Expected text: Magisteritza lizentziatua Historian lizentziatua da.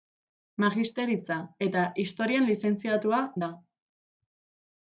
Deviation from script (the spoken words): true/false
true